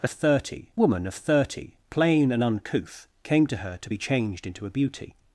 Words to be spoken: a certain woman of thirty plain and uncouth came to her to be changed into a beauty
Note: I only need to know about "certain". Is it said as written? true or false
false